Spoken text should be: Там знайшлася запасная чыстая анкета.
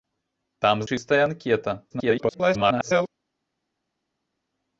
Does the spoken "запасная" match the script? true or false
false